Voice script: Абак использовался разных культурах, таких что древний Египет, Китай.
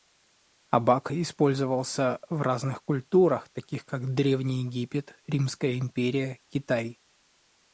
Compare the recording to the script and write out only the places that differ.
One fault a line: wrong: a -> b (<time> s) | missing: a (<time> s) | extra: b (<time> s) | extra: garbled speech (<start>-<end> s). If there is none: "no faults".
extra: в (2.3 s)
wrong: что -> как (3.8 s)
extra: Римская империя (5.3 s)